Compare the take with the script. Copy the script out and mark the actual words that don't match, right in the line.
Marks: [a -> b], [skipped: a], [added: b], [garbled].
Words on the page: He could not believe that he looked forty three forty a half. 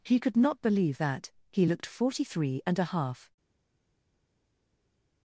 He could not believe that he looked forty three [forty -> and] a half.